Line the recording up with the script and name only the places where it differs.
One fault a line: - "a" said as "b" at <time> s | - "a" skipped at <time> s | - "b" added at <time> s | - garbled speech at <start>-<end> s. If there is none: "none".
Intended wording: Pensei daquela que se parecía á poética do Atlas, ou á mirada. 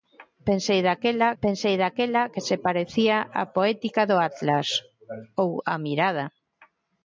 - "pensei daquela" added at 1.4 s